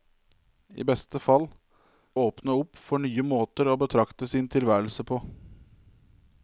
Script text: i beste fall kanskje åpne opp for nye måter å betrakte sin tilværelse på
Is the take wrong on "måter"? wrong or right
right